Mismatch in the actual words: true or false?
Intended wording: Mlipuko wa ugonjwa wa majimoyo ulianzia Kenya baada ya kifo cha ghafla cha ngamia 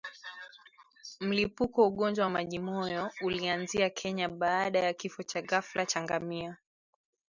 false